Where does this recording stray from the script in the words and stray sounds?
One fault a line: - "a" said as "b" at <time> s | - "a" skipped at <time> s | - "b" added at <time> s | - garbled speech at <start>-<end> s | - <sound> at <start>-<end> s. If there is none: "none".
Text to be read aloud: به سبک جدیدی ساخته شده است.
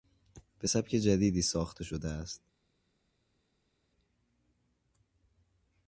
none